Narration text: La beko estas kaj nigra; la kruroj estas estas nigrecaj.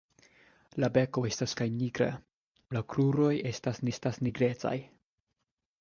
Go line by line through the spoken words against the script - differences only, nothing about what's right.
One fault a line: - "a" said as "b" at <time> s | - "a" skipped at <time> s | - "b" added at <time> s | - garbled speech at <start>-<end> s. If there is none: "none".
none